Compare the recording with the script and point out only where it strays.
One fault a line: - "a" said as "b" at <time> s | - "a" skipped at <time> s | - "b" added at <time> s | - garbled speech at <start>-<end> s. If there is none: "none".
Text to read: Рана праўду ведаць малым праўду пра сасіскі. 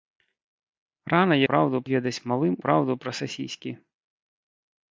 none